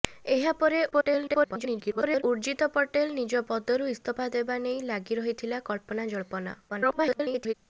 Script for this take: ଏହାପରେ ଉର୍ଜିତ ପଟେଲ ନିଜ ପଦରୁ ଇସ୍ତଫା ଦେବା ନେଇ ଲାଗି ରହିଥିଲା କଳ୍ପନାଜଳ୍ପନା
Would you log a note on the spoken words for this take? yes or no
yes